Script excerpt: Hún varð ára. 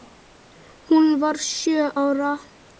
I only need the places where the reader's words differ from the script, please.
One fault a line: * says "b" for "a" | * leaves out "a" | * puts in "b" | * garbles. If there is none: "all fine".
* puts in "sjö"